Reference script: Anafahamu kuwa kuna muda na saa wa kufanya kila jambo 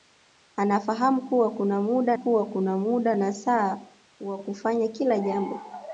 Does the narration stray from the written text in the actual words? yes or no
yes